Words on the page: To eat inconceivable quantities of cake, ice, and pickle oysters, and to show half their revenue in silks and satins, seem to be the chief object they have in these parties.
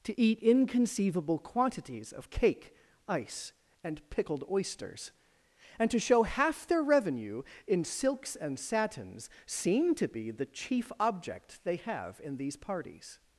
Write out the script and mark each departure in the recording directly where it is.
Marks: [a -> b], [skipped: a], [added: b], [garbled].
To eat inconceivable quantities of cake, ice, and [pickle -> pickled] oysters, and to show half their revenue in silks and satins, seem to be the chief object they have in these parties.